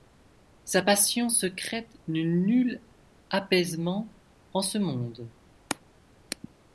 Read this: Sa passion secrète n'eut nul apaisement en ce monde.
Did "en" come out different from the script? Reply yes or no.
no